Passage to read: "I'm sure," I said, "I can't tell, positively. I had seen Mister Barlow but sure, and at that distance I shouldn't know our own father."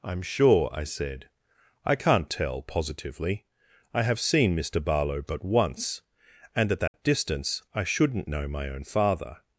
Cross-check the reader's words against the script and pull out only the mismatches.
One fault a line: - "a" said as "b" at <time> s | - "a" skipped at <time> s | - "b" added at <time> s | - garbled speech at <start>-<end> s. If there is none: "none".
- "had" said as "have" at 4.0 s
- "sure" said as "once" at 5.5 s
- "our" said as "my" at 8.5 s